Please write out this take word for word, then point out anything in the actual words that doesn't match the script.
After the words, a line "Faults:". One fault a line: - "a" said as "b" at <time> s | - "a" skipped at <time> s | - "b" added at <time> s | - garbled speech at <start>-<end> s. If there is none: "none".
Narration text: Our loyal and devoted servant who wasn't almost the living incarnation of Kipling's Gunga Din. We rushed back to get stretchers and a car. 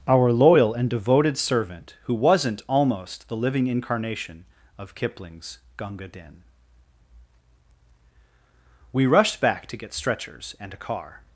Our loyal and devoted servant who wasn't almost the living incarnation of Kipling's Gunga Din. We rushed back to get stretchers and a car.
Faults:
none